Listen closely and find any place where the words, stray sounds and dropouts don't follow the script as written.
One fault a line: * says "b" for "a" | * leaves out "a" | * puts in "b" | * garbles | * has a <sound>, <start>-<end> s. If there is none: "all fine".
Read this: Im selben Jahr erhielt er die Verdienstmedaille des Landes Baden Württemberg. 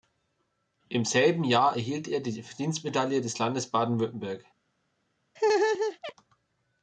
* has a laugh, 5.4-6.1 s